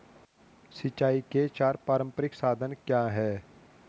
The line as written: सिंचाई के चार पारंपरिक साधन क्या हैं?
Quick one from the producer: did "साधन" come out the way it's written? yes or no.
yes